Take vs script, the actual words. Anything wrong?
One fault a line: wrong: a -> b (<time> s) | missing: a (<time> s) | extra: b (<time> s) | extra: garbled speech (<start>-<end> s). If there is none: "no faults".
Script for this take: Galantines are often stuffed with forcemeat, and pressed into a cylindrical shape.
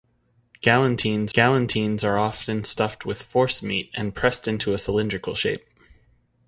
extra: galantines (1.3 s)